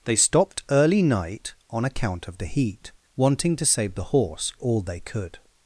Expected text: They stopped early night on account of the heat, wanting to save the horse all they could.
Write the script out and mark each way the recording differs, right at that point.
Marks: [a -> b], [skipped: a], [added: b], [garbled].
They stopped early night on account of the heat, wanting to save the horse all they could.